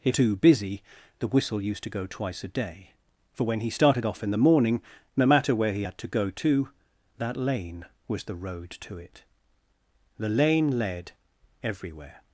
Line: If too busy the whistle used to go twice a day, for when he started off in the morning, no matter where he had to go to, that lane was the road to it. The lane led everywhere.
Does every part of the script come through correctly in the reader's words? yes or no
yes